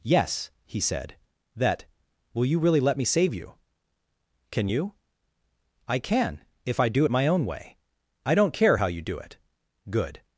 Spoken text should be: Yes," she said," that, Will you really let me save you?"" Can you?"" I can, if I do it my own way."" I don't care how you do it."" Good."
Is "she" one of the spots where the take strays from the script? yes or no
yes